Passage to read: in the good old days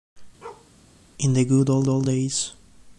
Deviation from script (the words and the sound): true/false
true